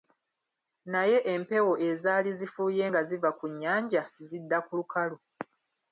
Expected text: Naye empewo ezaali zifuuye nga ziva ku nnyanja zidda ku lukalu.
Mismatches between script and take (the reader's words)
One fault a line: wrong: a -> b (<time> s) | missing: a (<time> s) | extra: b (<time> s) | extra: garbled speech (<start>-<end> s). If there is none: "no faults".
no faults